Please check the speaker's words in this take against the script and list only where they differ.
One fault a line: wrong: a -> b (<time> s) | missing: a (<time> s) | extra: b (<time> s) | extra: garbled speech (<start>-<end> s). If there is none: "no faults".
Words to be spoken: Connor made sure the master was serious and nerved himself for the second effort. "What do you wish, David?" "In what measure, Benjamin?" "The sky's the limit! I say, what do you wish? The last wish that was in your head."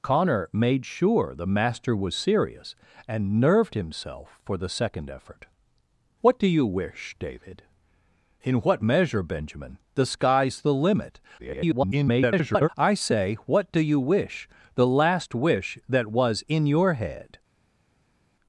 extra: garbled speech (11.4-12.7 s)